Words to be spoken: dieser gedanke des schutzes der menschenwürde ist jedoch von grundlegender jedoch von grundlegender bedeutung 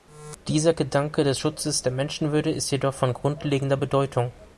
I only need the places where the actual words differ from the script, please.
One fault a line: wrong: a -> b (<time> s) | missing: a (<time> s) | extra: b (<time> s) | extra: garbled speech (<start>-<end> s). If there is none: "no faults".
missing: jedoch von grundlegender (3.8 s)